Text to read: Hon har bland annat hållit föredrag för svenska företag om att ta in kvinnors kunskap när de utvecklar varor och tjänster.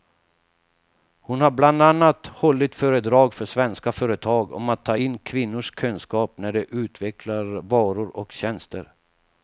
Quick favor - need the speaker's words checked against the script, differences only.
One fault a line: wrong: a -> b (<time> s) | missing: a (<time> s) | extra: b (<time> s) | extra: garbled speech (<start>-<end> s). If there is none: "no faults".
no faults